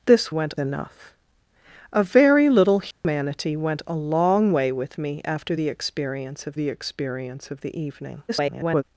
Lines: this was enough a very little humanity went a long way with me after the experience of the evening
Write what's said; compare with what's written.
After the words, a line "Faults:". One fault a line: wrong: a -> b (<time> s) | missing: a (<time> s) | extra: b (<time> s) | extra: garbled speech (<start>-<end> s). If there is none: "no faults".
this went enough a very little humanity went a long way with me after the experience of the experience of the evening [garbled]
Faults:
wrong: was -> went (0.3 s)
extra: experience of the (6.7 s)
extra: garbled speech (8.3-8.8 s)